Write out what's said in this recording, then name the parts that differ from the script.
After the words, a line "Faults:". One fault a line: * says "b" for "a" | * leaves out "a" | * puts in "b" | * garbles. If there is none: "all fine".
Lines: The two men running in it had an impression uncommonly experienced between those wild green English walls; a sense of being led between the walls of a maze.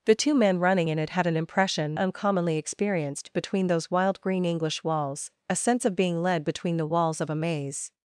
The two men running in it had an impression uncommonly experienced between those wild green English walls; a sense of being led between the walls of a maze.
Faults:
all fine